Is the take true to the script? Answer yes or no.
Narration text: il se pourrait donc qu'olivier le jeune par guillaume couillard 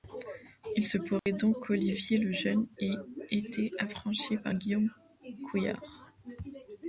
no